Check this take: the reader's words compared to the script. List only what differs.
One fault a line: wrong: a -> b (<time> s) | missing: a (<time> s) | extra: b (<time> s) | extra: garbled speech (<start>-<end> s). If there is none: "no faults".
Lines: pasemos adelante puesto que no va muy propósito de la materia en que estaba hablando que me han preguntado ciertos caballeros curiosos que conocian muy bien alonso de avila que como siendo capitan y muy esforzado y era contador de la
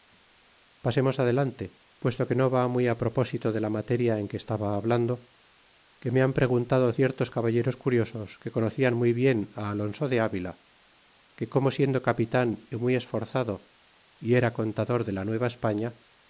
no faults